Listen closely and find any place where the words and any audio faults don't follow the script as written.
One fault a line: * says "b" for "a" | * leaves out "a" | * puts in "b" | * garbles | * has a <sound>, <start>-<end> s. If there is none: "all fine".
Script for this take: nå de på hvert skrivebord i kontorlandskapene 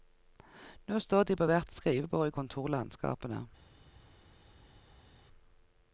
* puts in "står"